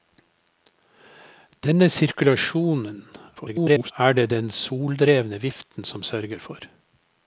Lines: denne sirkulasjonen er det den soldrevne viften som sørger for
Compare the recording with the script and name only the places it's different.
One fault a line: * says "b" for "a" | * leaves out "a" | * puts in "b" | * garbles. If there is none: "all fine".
* garbles